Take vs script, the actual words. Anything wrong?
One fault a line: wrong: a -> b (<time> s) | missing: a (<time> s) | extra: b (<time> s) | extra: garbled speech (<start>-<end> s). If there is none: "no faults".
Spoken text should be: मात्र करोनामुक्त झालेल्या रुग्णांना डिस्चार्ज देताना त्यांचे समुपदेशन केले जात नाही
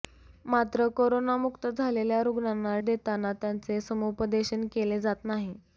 missing: डिस्चार्ज (2.8 s)